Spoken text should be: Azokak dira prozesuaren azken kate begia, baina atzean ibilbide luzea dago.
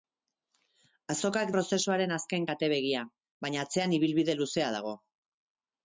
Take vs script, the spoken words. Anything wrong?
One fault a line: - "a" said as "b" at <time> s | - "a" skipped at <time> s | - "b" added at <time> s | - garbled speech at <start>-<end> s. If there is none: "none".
- "dira" skipped at 1.5 s